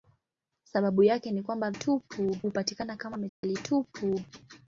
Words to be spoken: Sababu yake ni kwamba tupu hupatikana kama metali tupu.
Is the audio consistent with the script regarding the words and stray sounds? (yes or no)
no